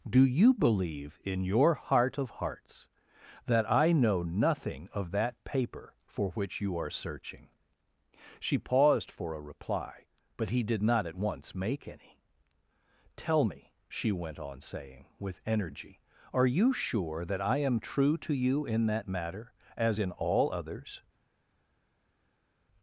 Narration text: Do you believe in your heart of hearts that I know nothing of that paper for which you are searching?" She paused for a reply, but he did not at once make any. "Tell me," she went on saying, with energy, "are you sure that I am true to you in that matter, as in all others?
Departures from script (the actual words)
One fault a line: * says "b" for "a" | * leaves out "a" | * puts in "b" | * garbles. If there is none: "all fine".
all fine